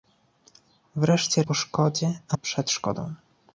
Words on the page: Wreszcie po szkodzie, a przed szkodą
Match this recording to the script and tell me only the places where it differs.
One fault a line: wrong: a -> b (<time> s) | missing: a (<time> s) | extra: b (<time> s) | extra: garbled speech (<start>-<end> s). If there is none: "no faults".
no faults